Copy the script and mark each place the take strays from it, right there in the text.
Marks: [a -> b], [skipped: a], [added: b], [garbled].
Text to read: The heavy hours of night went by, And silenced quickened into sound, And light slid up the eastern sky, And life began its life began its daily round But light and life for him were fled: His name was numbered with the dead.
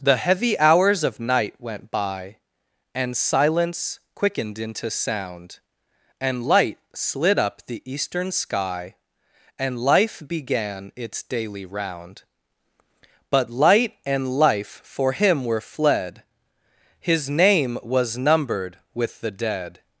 The heavy hours of night went by, And [silenced -> silence] quickened into sound, And light slid up the eastern sky, And life began its [skipped: life began its] daily round But light and life for him were fled: His name was numbered with the dead.